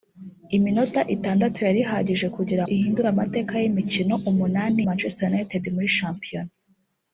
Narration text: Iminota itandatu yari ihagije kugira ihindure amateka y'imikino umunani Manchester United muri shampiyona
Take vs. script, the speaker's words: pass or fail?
pass